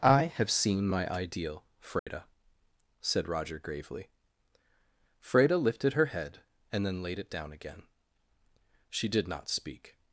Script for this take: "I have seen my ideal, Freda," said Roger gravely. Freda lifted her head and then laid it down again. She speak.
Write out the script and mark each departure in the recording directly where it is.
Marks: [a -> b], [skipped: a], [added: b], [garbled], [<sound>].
"I have seen my ideal, Freda," [dropout] said Roger gravely. Freda lifted her head and then laid it down again. She [added: did not] speak.